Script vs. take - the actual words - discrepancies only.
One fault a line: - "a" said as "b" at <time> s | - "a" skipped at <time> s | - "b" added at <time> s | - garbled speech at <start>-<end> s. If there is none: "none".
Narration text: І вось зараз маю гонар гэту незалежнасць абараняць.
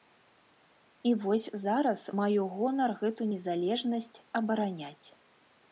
none